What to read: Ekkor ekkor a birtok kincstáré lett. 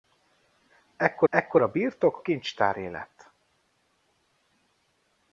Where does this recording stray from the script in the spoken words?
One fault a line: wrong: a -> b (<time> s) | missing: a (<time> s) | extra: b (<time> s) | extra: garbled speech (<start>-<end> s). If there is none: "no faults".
no faults